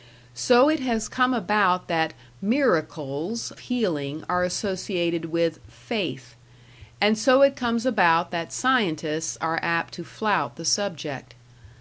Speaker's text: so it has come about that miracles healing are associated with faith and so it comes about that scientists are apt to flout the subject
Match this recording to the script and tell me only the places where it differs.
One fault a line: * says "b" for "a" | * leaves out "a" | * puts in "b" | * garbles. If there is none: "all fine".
all fine